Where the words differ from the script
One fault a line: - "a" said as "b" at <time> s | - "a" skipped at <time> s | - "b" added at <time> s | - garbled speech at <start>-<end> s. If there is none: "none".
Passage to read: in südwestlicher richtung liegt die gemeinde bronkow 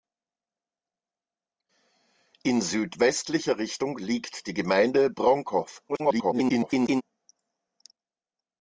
- garbled speech at 5.9-7.0 s